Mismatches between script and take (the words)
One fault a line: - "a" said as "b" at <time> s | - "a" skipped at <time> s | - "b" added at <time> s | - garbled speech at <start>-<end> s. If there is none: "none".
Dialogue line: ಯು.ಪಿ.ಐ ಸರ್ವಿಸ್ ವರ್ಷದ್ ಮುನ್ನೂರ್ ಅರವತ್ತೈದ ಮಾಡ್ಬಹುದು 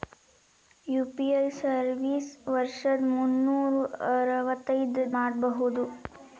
none